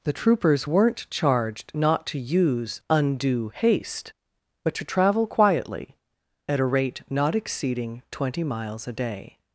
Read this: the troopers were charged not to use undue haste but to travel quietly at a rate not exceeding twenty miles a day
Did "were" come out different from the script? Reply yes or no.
yes